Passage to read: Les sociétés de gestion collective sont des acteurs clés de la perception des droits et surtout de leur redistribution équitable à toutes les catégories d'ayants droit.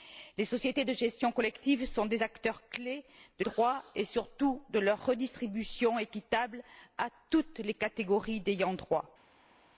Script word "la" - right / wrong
wrong